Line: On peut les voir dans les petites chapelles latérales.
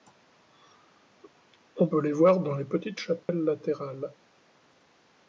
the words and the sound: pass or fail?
fail